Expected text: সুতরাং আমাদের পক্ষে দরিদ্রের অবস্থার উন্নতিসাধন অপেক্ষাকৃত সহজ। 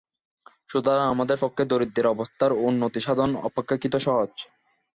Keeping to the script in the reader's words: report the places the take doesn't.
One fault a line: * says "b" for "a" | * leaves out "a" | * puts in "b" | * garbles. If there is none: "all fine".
all fine